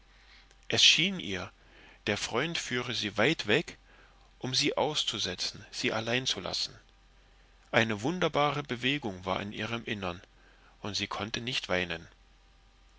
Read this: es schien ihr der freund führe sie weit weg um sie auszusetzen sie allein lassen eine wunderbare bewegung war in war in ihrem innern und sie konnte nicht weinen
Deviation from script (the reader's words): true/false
true